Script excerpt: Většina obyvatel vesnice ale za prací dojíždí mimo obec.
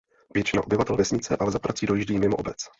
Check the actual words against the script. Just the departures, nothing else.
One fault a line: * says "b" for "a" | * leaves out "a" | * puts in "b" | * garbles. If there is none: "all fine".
all fine